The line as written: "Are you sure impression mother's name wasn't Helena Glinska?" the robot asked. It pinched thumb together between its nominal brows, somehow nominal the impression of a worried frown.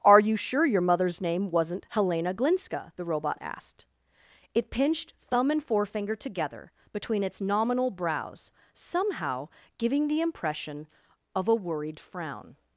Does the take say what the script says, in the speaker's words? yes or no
no